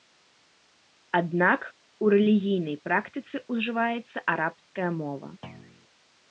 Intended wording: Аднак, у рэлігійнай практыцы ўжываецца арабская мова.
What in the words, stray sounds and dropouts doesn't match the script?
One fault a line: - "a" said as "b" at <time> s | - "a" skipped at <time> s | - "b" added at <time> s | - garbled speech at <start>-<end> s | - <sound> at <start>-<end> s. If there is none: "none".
- thud at 5.4-5.9 s